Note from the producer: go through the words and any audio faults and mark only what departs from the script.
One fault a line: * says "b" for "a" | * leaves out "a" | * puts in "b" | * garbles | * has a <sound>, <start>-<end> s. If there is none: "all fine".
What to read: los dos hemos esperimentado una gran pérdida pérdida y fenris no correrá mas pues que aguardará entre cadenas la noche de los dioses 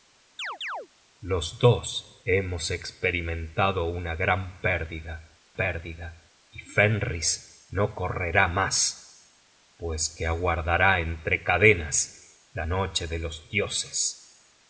* has a chirp, 0.4-0.9 s